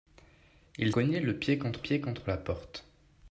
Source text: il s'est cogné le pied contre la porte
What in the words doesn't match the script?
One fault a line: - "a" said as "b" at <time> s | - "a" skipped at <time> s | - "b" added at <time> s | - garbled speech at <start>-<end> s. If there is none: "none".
- "s'est" skipped at 0.9 s
- "pied contre" added at 1.8 s